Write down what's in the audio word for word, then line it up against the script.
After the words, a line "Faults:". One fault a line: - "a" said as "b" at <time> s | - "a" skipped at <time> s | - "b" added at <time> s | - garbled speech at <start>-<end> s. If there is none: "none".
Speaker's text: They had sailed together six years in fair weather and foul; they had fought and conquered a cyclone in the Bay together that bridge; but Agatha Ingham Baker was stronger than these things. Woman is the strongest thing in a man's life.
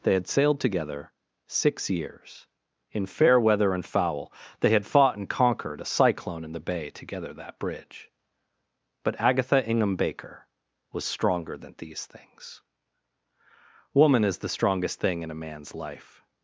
They had sailed together six years in fair weather and foul; they had fought and conquered a cyclone in the Bay together that bridge; but Agatha Ingham Baker was stronger than these things. Woman is the strongest thing in a man's life.
Faults:
none